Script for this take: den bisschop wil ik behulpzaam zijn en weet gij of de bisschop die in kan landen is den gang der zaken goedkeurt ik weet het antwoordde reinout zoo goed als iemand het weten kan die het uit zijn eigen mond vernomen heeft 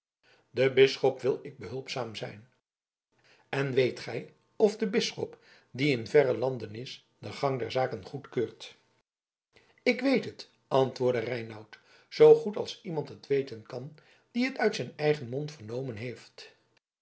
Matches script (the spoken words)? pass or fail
fail